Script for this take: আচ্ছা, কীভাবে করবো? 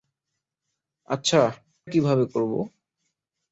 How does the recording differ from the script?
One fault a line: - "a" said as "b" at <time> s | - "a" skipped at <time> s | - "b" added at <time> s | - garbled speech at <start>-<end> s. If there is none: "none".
none